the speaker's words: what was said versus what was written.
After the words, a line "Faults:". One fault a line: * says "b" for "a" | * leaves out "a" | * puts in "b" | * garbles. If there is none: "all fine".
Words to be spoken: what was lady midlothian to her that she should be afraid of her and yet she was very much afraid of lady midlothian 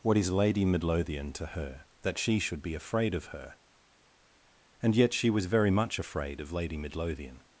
what is lady midlothian to her that she should be afraid of her and yet she was very much afraid of lady midlothian
Faults:
* says "is" for "was"